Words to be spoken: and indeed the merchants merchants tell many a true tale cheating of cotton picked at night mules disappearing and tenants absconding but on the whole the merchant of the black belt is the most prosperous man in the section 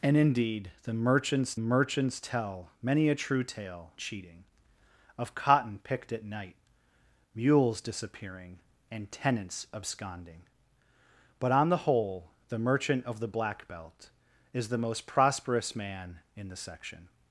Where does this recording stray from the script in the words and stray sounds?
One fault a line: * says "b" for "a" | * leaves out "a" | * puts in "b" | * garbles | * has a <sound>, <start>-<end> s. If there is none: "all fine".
all fine